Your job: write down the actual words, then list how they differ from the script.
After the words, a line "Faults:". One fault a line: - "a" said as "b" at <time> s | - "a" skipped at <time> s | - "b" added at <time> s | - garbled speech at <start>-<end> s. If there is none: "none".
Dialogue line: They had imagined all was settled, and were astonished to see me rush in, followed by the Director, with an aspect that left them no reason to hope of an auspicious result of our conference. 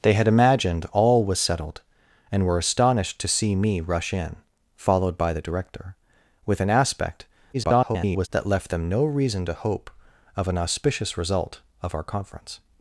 They had imagined all was settled, and were astonished to see me rush in, followed by the Director, with an aspect [garbled] that left them no reason to hope of an auspicious result of our conference.
Faults:
- garbled speech at 7.5-8.3 s